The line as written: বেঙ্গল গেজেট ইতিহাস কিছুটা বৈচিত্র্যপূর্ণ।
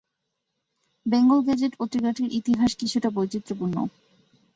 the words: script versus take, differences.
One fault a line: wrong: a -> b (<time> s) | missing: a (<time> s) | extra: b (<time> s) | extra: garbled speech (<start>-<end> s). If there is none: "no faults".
extra: পত্রিকাটির (1.8 s)